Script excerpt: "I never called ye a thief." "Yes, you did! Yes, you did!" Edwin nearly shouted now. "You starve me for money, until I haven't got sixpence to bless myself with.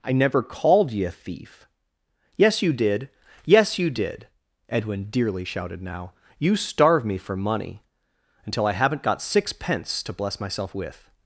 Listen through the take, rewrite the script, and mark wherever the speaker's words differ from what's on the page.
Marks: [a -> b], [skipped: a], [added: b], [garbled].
"I never called ye a thief." "Yes, you did! Yes, you did!" Edwin [nearly -> dearly] shouted now. "You starve me for money, until I haven't got sixpence to bless myself with.